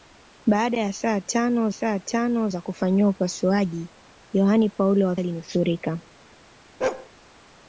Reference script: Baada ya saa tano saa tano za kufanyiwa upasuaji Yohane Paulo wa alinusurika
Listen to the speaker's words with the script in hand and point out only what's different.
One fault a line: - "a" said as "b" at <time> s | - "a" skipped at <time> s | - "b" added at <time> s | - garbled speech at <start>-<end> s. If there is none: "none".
none